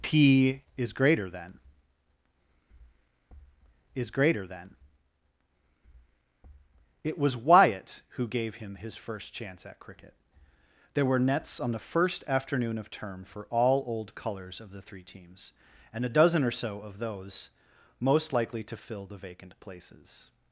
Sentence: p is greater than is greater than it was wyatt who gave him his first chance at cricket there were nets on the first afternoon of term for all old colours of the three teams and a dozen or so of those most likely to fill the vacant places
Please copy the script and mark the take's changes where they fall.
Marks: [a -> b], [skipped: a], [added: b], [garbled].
p is greater than is greater than it was wyatt who gave him his first chance at cricket there were nets on the first afternoon of term for all old colours of the three teams and a dozen or so of those most likely to fill the vacant places